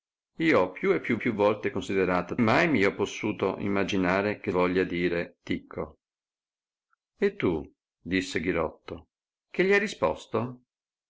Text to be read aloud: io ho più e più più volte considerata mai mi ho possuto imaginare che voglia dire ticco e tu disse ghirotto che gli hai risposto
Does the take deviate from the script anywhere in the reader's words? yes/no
no